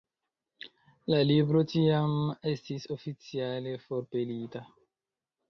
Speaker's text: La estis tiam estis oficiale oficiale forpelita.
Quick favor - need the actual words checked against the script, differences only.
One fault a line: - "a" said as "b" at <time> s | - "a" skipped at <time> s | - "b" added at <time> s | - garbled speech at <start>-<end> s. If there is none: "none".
- "estis" said as "libro" at 1.3 s
- "oficiale" skipped at 3.8 s